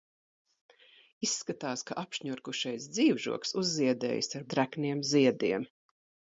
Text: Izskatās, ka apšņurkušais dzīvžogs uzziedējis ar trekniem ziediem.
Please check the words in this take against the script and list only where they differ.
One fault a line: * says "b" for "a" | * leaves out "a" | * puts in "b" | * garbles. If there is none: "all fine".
all fine